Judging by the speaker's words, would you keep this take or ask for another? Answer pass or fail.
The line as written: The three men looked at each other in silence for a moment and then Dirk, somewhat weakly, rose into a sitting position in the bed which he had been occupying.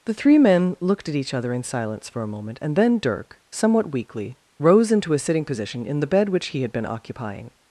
pass